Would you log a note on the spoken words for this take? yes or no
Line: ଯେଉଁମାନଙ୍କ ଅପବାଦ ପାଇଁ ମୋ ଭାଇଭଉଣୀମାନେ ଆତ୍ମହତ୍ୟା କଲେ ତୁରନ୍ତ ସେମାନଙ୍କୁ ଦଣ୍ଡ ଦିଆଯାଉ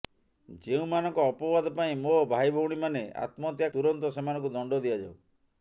yes